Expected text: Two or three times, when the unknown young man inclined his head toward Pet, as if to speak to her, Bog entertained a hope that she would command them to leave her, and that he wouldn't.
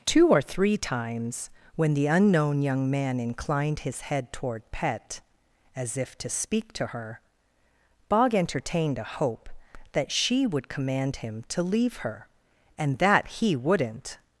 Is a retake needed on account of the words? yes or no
yes